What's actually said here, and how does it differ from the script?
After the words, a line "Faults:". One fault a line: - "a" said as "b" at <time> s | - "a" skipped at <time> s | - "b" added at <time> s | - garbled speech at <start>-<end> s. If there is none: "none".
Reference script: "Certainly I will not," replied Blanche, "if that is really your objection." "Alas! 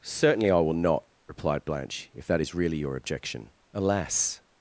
"Certainly I will not," replied Blanche, "if that is really your objection." "Alas!
Faults:
none